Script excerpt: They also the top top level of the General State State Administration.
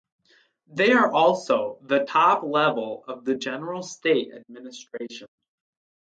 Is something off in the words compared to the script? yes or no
yes